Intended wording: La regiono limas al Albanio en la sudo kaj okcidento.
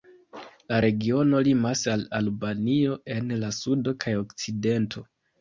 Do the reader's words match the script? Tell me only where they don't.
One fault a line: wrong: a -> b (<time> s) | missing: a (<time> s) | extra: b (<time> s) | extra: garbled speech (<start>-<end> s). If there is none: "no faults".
no faults